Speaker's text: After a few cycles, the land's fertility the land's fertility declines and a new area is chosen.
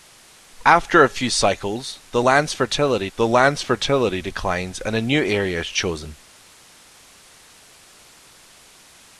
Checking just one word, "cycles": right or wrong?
right